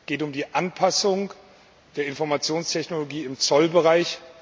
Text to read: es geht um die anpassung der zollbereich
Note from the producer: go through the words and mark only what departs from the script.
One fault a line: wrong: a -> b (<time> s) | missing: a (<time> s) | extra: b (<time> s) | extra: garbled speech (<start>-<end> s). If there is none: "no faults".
extra: informationstechnologie im (2.1 s)